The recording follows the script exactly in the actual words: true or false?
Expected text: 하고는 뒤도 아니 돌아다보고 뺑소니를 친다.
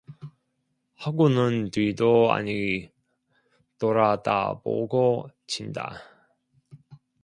false